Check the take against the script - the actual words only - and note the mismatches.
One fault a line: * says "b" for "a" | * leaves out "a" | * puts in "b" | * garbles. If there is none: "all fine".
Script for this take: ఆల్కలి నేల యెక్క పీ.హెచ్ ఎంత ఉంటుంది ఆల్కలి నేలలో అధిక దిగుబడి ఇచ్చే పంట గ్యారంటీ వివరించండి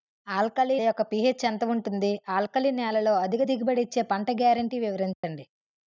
* leaves out "నేల"